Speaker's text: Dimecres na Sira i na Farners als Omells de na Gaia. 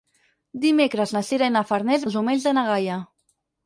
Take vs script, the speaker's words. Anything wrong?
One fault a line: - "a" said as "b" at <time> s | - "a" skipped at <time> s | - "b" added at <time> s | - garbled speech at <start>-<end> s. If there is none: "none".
none